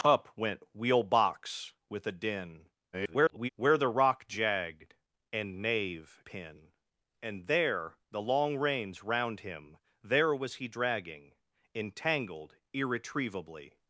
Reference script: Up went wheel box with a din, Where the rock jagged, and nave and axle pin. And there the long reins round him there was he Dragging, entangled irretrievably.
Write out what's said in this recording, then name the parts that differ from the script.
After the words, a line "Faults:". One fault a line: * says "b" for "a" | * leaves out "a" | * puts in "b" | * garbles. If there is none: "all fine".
Up went wheel box with a din, [garbled] Where the rock jagged, and nave pin. And there the long reins round him there was he Dragging, entangled irretrievably.
Faults:
* garbles
* leaves out "and axle"